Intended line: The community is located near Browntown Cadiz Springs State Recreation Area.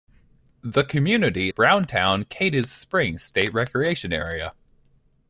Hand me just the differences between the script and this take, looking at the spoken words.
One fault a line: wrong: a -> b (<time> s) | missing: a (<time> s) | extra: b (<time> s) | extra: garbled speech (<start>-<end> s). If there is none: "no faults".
missing: is located near (1.5 s)